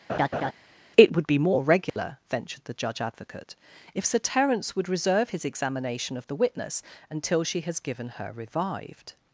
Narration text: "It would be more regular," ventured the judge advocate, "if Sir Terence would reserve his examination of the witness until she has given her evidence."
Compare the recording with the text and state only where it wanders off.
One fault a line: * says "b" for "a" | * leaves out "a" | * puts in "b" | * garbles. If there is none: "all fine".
* says "revived" for "evidence"